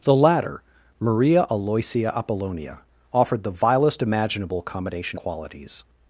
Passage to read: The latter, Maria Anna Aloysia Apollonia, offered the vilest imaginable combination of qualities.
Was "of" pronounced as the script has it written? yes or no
no